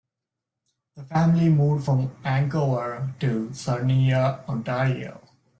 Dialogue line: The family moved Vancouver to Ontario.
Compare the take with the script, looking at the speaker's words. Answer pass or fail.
fail